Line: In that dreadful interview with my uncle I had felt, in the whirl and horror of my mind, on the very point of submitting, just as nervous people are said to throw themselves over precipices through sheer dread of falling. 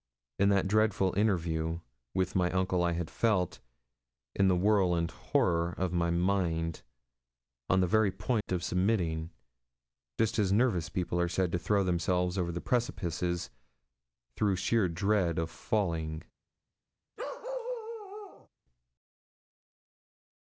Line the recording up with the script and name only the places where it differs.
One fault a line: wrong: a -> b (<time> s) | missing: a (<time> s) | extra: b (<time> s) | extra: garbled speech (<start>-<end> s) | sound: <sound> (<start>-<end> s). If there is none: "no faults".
sound: dropout (8.4-8.5 s)
sound: bark (17.2-18.5 s)